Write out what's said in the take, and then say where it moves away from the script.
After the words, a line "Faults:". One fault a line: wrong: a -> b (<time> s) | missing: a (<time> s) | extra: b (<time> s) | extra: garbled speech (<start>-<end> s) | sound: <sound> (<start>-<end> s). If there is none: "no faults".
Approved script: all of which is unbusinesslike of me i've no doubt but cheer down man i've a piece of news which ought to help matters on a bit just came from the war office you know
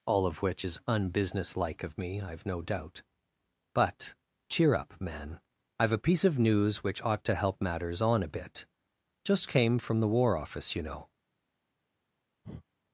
all of which is unbusinesslike of me i've no doubt but cheer up man i've a piece of news which ought to help matters on a bit just came from the war office you know
Faults:
wrong: down -> up (4.7 s)
sound: breath (12.4-12.6 s)